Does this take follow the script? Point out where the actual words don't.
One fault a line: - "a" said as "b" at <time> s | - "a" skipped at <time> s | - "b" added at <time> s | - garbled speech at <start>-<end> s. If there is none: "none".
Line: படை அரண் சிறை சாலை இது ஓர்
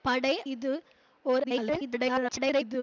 - "அரண் சிறை சாலை" skipped at 0.3 s
- garbled speech at 1.4-2.8 s